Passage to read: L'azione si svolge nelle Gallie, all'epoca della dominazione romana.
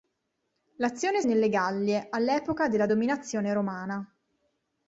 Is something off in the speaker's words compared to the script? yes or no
yes